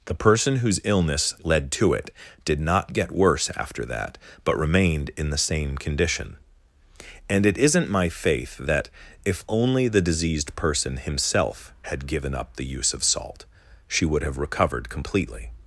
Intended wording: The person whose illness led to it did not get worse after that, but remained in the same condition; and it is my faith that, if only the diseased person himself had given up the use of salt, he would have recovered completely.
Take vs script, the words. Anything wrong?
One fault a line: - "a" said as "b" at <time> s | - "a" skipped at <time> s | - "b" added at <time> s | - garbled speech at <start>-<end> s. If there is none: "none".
- "is" said as "isn't" at 7.6 s
- "he" said as "she" at 13.9 s